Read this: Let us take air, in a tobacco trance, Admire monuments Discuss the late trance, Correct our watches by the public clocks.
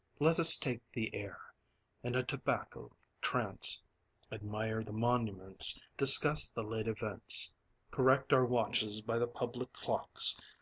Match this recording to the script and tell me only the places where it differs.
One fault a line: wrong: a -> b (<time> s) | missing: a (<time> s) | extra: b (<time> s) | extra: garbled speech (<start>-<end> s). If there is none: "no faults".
extra: the (0.9 s)
extra: the (4.8 s)
wrong: trance -> events (6.9 s)